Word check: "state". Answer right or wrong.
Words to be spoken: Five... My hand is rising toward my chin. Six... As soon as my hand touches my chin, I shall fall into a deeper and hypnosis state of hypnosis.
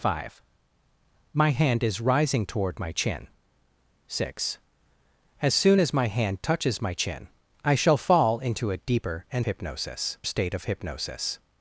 right